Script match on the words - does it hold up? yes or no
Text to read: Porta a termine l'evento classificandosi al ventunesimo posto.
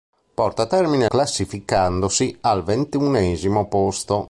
no